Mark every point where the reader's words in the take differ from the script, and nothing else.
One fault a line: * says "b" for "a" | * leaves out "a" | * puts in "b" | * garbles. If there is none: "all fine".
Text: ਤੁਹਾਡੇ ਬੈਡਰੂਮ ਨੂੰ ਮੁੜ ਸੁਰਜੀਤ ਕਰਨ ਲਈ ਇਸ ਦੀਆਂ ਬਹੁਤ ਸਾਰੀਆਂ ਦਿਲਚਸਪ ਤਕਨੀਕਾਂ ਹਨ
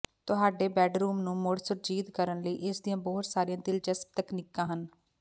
all fine